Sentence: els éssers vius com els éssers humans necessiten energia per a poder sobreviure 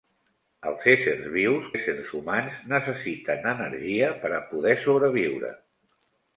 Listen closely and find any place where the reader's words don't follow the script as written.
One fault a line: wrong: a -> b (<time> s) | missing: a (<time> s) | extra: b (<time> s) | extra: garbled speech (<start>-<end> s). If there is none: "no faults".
missing: com els (1.6 s)